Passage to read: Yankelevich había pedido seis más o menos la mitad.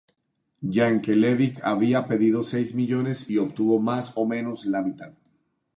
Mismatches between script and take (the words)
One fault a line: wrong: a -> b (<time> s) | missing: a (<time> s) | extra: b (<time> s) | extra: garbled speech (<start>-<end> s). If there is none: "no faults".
extra: millones y obtuvo (2.7 s)